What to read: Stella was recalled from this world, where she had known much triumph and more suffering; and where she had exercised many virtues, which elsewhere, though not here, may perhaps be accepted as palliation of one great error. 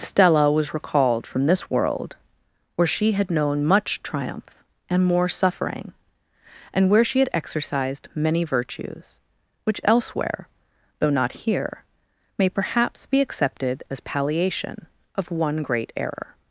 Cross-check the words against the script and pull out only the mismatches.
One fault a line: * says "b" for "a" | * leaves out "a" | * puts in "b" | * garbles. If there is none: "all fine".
all fine